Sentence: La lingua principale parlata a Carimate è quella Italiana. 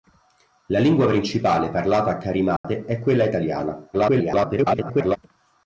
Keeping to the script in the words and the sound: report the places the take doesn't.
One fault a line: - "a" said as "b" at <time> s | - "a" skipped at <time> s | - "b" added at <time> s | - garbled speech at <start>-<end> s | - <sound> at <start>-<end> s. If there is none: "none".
- dropout at 2.6-2.6 s
- garbled speech at 3.9-5.2 s